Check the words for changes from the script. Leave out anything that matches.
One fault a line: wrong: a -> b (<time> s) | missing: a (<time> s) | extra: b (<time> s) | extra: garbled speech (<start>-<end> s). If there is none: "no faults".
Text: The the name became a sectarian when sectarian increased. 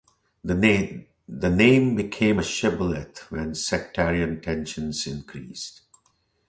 missing: the (0.6 s)
wrong: sectarian -> shibboleth (2.4 s)
extra: tensions (4.4 s)